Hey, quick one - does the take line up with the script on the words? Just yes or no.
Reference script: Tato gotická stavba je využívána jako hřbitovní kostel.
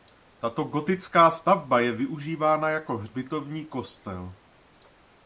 yes